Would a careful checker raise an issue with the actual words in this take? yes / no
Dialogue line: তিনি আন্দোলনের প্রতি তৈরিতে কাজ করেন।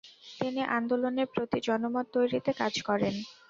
yes